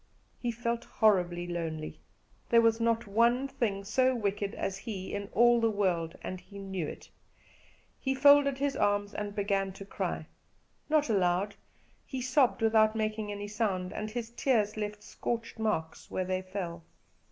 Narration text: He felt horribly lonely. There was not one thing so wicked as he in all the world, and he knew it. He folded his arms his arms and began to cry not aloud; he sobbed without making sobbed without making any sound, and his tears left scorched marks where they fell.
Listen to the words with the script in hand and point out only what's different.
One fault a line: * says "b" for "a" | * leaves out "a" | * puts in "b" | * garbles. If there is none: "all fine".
* leaves out "his arms"
* leaves out "sobbed without making"